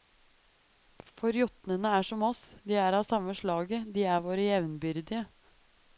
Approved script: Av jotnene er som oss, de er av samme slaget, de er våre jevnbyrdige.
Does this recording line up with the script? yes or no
no